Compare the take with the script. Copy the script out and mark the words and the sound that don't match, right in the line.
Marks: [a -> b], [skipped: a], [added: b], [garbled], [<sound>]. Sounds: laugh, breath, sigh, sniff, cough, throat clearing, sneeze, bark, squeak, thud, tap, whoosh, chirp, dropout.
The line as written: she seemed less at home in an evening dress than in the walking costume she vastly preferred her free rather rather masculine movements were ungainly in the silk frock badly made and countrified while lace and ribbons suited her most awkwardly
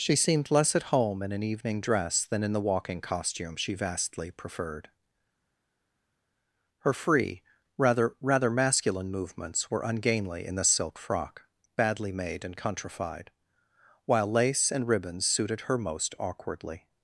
she seemed less at home in an evening dress than in the walking costume she vastly preferred her free rather rather masculine movements were ungainly in the silk frock badly made and countrified while lace and ribbons suited her most awkwardly